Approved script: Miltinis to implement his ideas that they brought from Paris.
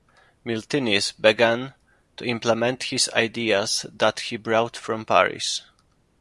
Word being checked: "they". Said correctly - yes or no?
no